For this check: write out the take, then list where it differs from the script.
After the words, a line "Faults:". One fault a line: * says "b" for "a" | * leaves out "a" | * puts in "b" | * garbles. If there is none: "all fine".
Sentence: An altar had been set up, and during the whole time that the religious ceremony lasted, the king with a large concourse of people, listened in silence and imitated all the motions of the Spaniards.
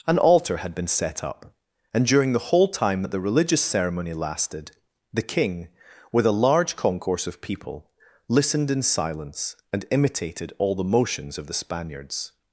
An altar had been set up, and during the whole time that the religious ceremony lasted, the king with a large concourse of people, listened in silence and imitated all the motions of the Spaniards.
Faults:
all fine